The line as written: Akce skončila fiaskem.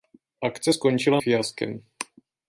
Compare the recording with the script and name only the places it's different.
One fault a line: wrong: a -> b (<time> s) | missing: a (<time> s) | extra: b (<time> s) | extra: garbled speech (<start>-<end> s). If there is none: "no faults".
no faults